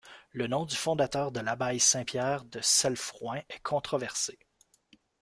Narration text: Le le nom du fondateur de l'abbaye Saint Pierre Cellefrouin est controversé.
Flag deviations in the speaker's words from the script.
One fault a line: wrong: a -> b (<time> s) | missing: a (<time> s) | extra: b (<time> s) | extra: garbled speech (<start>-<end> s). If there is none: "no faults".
missing: le (0.5 s)
extra: de (2.5 s)